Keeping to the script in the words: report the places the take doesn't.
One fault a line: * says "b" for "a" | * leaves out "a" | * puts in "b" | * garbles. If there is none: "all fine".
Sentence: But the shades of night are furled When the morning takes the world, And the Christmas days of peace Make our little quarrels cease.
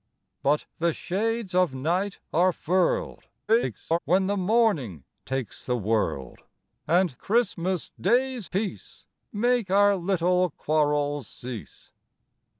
* garbles
* leaves out "the"
* leaves out "of"